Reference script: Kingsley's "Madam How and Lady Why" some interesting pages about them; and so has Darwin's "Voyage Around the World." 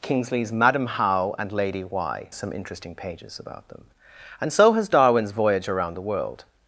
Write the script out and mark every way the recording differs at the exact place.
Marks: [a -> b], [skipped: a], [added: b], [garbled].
Kingsley's "Madam How and Lady Why" some interesting pages about them; and so has Darwin's "Voyage Around the World."